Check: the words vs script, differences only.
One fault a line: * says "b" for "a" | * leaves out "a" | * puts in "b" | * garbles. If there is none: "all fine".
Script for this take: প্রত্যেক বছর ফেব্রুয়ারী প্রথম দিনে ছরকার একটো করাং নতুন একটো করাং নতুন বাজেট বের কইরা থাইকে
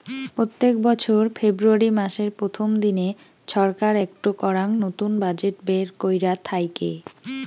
* puts in "মাসের"
* leaves out "একটো করাং নতুন"